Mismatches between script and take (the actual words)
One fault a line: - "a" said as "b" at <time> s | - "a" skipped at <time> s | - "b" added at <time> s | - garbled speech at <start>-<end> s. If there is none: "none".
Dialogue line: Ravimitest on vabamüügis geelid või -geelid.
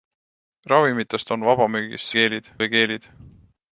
none